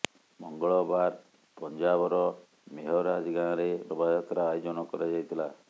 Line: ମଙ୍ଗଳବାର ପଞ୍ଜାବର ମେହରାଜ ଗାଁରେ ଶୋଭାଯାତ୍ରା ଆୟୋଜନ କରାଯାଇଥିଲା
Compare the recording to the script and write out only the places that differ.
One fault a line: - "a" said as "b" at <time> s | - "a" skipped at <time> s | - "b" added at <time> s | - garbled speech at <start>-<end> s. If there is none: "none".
none